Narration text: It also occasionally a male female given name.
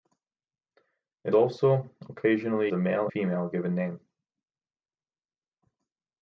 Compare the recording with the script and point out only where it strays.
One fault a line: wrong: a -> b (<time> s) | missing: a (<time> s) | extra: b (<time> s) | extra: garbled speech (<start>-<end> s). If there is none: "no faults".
no faults